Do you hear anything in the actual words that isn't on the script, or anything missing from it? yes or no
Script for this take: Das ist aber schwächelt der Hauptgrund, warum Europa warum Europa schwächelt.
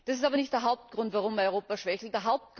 yes